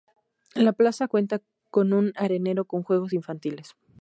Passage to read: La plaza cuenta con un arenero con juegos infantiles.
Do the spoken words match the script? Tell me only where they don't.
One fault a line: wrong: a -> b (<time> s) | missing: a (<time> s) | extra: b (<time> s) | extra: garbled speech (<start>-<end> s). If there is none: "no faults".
no faults